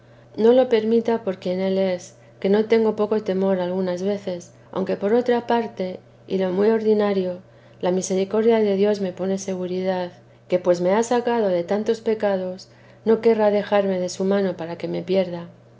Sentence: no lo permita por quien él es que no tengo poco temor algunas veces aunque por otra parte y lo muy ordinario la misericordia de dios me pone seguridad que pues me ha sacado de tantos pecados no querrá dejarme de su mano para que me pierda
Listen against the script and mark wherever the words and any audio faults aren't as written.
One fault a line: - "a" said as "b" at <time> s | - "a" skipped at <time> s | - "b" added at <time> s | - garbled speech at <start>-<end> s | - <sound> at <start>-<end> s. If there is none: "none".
none